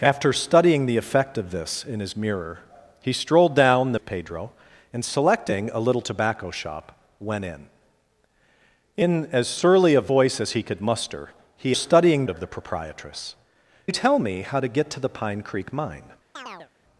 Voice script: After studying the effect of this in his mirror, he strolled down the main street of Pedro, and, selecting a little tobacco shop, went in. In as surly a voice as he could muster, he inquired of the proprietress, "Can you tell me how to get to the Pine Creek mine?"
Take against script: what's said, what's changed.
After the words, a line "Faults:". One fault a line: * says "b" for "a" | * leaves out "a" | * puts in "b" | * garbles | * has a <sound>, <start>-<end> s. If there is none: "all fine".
After studying the effect of this in his mirror, he strolled down the of Pedro, and, selecting a little tobacco shop, went in. In as surly a voice as he could muster, he studying of the proprietress, "You tell me how to get to the Pine Creek mine?"
Faults:
* leaves out "main street"
* says "studying" for "inquired"
* leaves out "Can"
* has a chirp, 16.4-16.7 s